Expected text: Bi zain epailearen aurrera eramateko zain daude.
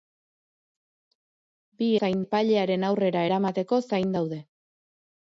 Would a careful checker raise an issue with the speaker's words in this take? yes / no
no